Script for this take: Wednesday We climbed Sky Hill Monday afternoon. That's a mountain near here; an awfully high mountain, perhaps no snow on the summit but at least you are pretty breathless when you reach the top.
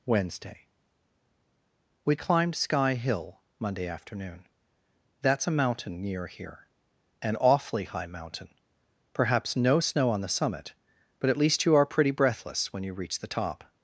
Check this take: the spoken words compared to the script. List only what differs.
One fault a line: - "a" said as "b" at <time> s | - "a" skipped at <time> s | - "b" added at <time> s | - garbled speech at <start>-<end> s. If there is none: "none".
none